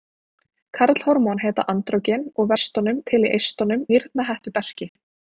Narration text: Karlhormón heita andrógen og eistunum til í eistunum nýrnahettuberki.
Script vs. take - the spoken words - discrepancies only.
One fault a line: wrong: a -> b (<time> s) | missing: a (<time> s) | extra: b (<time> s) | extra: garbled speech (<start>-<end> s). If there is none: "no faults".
no faults